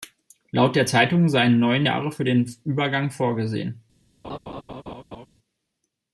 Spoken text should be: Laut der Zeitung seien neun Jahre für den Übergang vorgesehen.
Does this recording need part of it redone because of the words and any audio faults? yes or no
yes